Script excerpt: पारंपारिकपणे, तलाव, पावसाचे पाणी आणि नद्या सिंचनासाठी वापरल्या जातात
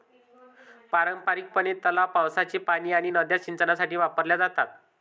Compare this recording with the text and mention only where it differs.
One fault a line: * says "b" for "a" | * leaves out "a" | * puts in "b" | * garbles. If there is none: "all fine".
all fine